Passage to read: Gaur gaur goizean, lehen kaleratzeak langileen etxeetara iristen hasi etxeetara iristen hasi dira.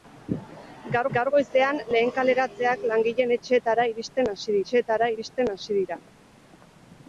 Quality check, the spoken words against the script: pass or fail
pass